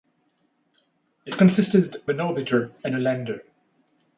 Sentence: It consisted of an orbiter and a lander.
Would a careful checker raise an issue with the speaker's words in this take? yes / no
yes